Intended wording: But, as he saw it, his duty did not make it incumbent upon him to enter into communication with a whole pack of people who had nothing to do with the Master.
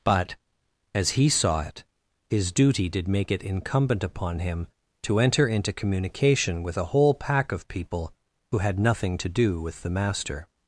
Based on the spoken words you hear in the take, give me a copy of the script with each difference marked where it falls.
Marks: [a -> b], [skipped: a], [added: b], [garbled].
But, as he saw it, his duty did [skipped: not] make it incumbent upon him to enter into communication with a whole pack of people who had nothing to do with the Master.